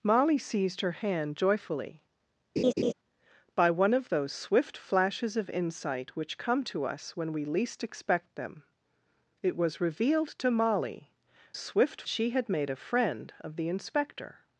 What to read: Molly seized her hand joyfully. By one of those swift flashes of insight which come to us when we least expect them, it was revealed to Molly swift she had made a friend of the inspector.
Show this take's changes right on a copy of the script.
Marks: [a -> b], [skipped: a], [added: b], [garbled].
Molly seized her hand joyfully. By one of those swift flashes of insight which come to us when we least expect them, it was revealed to Molly swift she had made a friend of the inspector.